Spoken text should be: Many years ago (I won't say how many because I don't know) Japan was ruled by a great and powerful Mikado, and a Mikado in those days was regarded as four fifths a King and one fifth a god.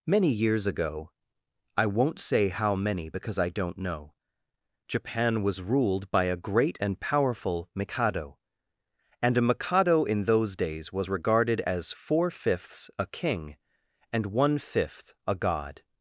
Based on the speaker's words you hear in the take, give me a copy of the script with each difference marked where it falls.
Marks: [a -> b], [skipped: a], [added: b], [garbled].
Many years ago (I won't say how many because I don't know) Japan was ruled by a great and powerful Mikado, and a Mikado in those days was regarded as four fifths a King and one fifth a god.